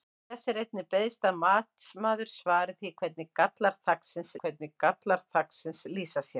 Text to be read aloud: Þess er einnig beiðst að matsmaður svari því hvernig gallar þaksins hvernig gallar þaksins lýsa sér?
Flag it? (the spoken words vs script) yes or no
no